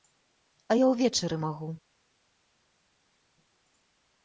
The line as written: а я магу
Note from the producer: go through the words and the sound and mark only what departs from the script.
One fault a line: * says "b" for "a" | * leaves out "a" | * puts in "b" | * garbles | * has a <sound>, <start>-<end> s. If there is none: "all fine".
* puts in "ўвечары"